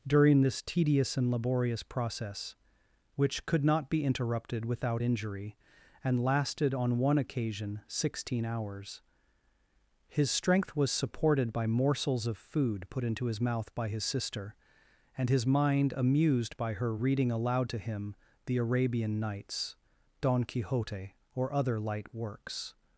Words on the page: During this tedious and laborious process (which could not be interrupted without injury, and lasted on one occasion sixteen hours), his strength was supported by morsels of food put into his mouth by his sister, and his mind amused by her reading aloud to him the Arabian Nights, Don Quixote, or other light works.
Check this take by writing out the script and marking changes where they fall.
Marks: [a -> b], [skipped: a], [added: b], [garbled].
During this tedious and laborious process (which could not be interrupted without injury, and lasted on one occasion sixteen hours), his strength was supported by morsels of food put into his mouth by his sister, and his mind amused by her reading aloud to him the Arabian Nights, Don Quixote, or other light works.